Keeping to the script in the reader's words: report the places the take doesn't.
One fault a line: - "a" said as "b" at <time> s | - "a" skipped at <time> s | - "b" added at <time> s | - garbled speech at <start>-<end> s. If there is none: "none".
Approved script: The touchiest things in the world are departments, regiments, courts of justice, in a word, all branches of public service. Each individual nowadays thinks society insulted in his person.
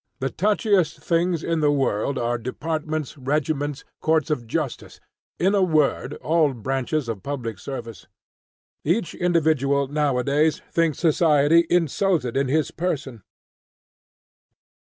none